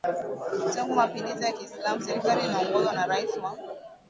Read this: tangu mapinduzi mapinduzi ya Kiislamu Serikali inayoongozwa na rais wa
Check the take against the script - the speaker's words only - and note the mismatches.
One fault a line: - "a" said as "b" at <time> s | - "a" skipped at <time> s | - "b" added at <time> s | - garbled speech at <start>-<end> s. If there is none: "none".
- "mapinduzi" skipped at 1.4 s